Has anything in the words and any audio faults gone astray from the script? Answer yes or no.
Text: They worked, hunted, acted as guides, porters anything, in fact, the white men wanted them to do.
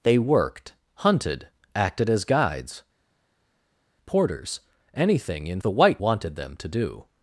yes